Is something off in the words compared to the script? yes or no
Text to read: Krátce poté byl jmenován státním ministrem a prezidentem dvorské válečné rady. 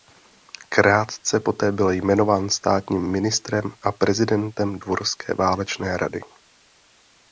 no